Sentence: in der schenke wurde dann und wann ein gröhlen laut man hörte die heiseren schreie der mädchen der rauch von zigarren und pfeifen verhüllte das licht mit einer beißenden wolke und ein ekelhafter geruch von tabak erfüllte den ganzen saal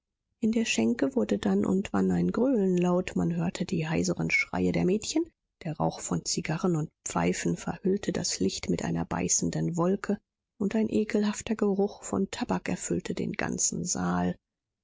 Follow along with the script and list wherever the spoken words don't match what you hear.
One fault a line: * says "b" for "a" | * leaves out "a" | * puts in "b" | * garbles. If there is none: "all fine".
all fine